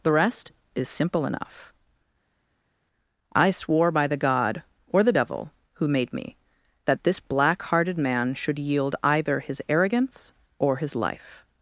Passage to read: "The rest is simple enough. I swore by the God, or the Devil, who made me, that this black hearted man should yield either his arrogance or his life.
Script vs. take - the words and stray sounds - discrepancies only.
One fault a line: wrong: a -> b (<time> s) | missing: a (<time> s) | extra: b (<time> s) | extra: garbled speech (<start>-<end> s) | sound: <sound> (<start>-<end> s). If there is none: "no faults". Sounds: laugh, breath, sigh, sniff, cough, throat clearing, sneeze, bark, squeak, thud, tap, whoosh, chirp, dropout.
no faults